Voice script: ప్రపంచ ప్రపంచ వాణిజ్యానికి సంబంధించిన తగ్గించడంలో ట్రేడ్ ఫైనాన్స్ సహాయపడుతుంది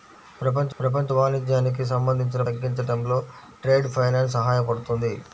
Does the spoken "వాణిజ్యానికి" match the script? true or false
true